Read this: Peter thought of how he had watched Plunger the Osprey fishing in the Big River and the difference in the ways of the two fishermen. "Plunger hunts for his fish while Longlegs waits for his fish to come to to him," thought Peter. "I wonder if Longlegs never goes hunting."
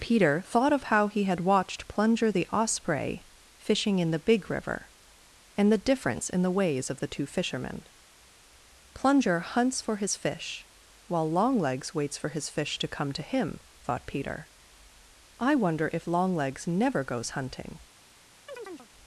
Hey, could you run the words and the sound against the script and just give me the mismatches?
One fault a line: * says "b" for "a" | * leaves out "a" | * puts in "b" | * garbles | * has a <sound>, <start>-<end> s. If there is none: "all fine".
* leaves out "to"
* has a chirp, 18.5-18.9 s